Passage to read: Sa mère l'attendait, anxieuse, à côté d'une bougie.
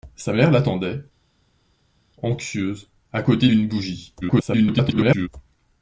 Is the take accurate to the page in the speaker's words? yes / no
no